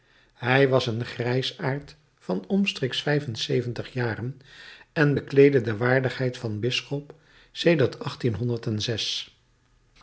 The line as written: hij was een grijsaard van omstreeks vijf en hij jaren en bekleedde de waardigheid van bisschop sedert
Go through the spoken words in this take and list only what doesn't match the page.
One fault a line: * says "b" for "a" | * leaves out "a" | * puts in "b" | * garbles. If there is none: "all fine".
* says "zeventig" for "hij"